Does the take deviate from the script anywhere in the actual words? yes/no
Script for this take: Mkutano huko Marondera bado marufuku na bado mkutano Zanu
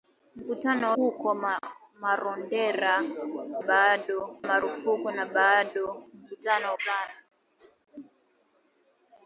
no